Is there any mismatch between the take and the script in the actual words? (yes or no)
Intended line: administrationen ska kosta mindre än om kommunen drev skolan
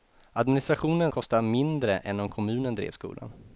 yes